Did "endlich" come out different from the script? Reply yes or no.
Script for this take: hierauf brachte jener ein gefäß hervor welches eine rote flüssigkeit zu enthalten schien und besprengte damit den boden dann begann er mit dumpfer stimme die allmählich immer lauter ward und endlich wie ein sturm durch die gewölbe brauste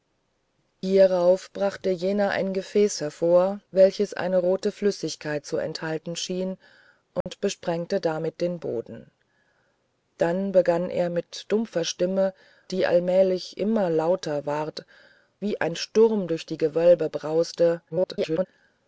yes